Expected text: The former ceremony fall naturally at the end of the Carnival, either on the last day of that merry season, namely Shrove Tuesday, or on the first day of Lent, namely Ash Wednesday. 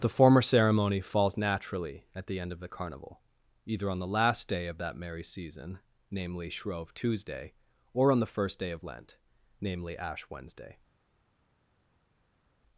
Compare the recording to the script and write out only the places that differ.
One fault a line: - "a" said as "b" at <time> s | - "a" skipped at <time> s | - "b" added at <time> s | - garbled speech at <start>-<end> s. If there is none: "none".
- "fall" said as "falls" at 1.0 s